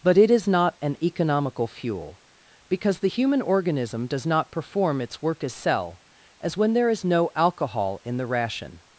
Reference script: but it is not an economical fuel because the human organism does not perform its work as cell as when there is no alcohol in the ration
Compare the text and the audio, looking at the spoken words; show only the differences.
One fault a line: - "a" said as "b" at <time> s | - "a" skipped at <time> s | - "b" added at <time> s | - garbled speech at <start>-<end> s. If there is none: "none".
none